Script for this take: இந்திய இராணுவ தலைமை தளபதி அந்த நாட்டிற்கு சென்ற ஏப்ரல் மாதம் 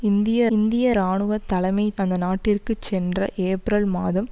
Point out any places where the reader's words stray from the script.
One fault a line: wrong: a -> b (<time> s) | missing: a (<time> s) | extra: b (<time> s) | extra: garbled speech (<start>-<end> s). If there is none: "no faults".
extra: இந்திய (0.5 s)
missing: தளபதி (1.8 s)